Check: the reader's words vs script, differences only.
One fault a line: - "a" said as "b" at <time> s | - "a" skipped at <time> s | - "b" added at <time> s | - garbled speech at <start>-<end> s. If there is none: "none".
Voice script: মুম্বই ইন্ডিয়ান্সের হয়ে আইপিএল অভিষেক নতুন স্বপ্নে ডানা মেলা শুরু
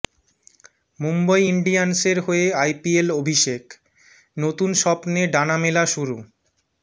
none